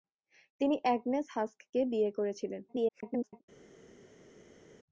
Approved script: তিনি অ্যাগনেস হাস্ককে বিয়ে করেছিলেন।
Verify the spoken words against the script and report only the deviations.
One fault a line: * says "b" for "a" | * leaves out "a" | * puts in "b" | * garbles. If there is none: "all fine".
* garbles